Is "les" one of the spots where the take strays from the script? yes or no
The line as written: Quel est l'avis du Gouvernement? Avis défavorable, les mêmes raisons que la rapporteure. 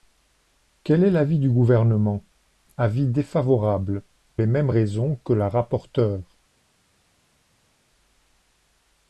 no